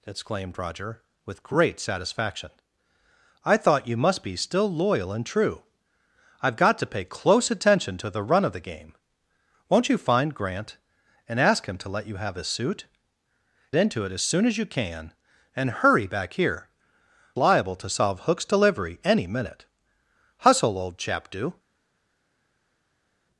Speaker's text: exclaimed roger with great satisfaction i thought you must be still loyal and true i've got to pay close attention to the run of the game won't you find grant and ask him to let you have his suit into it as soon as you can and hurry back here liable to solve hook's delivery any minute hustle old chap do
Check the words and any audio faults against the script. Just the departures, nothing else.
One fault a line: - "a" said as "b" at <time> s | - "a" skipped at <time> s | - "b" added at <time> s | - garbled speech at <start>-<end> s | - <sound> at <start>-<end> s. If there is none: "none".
none